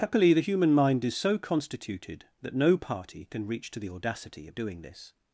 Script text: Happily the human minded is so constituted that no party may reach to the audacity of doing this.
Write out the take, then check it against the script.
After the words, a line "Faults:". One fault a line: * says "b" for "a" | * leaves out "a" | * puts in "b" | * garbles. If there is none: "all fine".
Happily the human mind is so constituted that no party can reach to the audacity of doing this.
Faults:
* says "mind" for "minded"
* says "can" for "may"